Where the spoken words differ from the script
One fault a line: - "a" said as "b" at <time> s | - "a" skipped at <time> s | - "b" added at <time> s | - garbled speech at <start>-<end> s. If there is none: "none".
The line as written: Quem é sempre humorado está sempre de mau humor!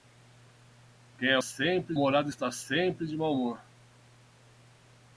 none